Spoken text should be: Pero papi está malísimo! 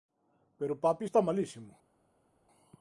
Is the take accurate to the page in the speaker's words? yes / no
yes